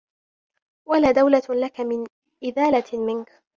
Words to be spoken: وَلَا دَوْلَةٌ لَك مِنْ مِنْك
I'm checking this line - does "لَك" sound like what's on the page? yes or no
yes